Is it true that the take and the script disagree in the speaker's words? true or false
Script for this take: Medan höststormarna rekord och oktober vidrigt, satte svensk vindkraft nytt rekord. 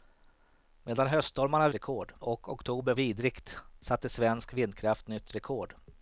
false